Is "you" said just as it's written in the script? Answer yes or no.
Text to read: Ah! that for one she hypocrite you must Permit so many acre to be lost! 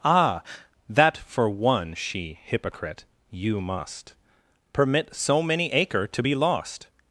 yes